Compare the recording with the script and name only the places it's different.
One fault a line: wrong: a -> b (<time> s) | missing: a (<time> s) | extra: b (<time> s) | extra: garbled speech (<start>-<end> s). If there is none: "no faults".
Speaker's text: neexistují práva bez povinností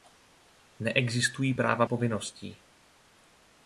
missing: bez (1.9 s)